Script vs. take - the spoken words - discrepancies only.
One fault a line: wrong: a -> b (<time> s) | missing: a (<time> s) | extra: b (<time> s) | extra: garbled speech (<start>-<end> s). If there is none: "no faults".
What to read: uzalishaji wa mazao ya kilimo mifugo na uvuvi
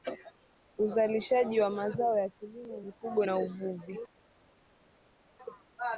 no faults